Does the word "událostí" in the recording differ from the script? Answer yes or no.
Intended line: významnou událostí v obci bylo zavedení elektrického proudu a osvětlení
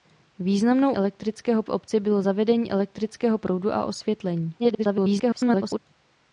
yes